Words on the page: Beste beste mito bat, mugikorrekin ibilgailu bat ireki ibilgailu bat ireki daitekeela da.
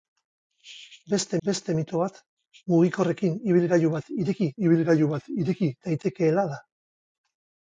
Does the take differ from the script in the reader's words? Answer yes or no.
no